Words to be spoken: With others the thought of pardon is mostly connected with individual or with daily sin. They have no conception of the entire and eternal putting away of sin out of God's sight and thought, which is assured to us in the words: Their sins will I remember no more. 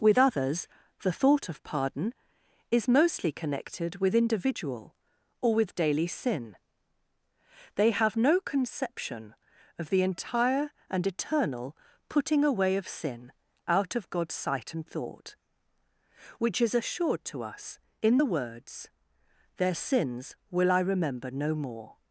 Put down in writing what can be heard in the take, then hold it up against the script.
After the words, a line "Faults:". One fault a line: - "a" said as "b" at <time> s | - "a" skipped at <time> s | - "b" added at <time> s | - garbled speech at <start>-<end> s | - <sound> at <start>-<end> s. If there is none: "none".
With others the thought of pardon is mostly connected with individual or with daily sin. They have no conception of the entire and eternal putting away of sin out of God's sight and thought, which is assured to us in the words: Their sins will I remember no more.
Faults:
none